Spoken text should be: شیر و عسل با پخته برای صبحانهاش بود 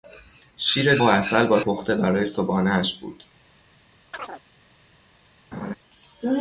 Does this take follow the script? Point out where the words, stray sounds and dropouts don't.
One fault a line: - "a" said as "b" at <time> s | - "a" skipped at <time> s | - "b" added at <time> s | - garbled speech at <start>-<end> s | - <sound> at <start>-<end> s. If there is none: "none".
- chirp at 4.1-4.4 s
- laugh at 5.5-5.8 s